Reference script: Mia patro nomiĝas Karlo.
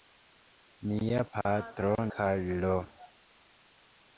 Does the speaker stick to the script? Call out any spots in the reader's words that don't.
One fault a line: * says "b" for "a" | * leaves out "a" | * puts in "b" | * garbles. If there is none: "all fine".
* leaves out "nomiĝas"